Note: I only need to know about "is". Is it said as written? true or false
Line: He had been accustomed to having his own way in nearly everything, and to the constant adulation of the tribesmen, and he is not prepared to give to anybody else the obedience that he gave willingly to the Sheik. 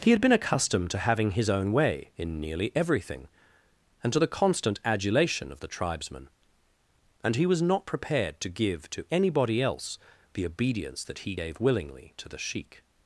false